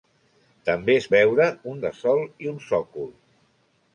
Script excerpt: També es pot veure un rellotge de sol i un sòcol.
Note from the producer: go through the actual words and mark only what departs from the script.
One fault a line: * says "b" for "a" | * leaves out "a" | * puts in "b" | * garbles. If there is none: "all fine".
* leaves out "pot"
* leaves out "rellotge"